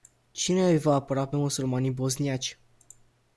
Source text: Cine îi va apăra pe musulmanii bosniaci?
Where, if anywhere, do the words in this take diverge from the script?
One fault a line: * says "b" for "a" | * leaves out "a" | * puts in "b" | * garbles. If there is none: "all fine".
all fine